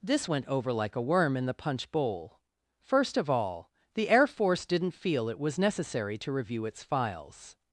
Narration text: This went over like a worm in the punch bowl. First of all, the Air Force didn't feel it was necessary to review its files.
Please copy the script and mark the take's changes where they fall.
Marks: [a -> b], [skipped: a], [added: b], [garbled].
This went over like a worm in the punch bowl. First of all, the Air Force didn't feel it was necessary to review its files.